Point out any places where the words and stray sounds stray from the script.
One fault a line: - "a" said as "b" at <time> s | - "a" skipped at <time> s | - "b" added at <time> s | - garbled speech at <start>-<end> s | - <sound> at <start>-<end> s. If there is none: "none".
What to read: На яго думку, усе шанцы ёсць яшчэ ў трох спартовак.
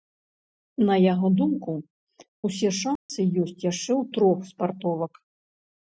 - dropout at 3.0-3.1 s